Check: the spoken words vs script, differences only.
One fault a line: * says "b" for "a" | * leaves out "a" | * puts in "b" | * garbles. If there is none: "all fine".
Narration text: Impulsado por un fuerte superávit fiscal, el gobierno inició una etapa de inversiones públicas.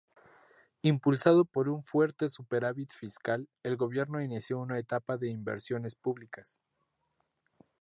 all fine